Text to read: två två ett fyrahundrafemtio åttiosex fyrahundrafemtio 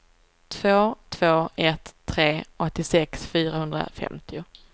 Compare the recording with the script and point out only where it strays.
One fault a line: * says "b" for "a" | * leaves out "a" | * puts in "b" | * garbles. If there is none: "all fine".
* says "tre" for "fyrahundrafemtio"